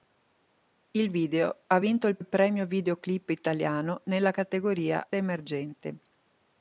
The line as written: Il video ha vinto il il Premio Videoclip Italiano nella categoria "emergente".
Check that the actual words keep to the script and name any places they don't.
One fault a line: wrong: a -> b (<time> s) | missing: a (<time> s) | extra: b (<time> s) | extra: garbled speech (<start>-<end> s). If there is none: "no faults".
no faults